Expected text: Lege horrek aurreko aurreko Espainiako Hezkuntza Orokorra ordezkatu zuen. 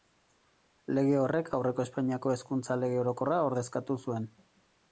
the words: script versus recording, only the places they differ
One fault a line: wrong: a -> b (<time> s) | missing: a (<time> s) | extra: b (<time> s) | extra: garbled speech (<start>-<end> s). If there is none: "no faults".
missing: aurreko (1.9 s)
extra: Lege (2.9 s)